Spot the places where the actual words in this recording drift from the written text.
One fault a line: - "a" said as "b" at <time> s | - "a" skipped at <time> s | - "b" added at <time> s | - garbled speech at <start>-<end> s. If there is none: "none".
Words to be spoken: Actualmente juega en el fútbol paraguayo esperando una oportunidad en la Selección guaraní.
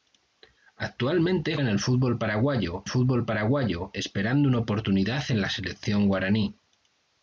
- "juega" skipped at 1.6 s
- "fútbol paraguayo" added at 2.9 s